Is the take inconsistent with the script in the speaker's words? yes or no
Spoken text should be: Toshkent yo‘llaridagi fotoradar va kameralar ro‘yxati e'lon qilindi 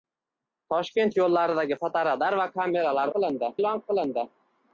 yes